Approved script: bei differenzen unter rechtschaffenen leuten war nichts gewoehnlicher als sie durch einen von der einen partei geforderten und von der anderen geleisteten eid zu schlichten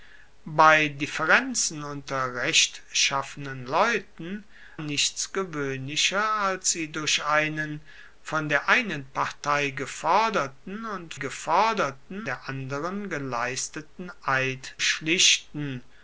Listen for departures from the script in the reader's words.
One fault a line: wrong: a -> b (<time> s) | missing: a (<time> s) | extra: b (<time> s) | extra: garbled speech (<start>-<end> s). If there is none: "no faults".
missing: war (4.4 s)
wrong: von -> geforderten (11.1 s)
missing: zu (14.8 s)